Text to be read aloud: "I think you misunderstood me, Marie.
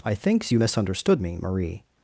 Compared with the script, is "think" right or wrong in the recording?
wrong